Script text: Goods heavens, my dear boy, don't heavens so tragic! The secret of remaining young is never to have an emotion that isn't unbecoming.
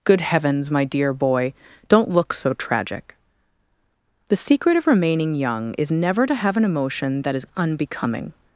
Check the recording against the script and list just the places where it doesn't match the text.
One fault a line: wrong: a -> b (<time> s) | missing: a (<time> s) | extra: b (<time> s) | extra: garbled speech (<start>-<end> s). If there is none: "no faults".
wrong: Goods -> Good (0.0 s)
wrong: heavens -> look (2.1 s)
wrong: isn't -> is (7.3 s)